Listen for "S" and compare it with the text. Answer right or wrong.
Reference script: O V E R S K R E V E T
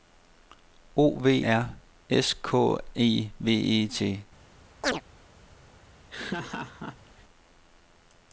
right